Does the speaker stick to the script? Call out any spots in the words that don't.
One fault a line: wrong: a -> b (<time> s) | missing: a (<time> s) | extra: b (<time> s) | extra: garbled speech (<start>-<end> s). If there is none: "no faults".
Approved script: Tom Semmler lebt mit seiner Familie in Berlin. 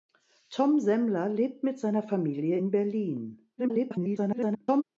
extra: garbled speech (3.6-4.8 s)